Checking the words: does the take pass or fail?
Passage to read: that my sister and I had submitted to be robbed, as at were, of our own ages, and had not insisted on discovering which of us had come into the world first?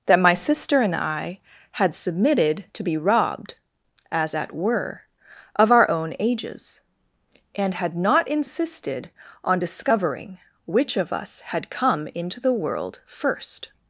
pass